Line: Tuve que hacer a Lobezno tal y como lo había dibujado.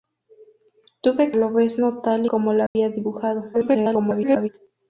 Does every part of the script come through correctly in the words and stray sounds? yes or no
no